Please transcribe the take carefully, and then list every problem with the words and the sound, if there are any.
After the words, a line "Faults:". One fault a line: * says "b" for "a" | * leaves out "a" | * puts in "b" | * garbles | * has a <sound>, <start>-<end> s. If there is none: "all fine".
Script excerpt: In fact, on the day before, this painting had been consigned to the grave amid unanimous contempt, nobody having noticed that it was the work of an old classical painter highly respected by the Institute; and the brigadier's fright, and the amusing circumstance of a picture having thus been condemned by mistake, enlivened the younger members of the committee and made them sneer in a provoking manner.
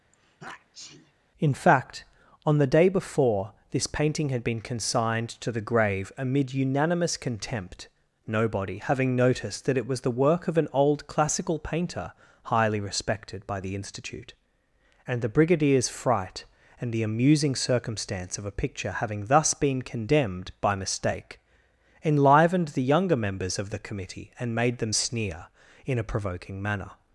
In fact, on the day before, this painting had been consigned to the grave amid unanimous contempt, nobody having noticed that it was the work of an old classical painter highly respected by the Institute; and the brigadier's fright, and the amusing circumstance of a picture having thus been condemned by mistake, enlivened the younger members of the committee and made them sneer in a provoking manner.
Faults:
* has a sneeze, 0.1-1.1 s